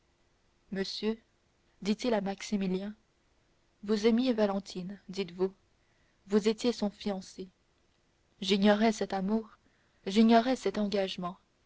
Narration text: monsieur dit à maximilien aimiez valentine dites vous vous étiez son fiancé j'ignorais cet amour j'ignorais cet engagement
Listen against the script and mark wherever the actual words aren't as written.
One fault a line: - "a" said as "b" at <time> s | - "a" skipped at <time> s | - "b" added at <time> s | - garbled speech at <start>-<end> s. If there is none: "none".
- "il" added at 2.0 s
- "vous" added at 3.8 s